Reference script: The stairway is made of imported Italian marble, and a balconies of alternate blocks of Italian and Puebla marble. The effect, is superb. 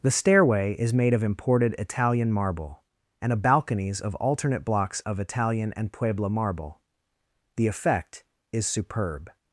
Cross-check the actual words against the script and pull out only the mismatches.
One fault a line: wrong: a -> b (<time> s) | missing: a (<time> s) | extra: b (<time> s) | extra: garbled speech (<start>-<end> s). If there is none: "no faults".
no faults